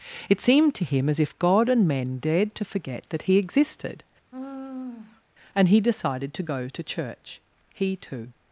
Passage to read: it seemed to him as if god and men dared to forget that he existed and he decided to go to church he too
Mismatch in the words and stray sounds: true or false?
true